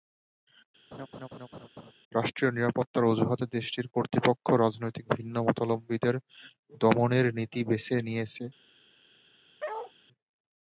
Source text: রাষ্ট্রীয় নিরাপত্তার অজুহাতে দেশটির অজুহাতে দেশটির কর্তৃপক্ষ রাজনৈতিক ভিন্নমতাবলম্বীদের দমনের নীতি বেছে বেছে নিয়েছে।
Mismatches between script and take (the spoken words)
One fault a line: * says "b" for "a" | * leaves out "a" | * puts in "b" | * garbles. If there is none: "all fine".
* leaves out "অজুহাতে দেশটির"
* leaves out "বেছে"